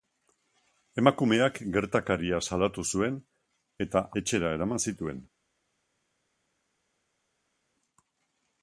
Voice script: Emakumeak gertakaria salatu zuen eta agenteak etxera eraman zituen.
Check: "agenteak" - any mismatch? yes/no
yes